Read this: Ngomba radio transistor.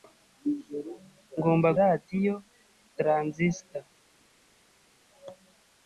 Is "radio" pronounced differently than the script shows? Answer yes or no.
no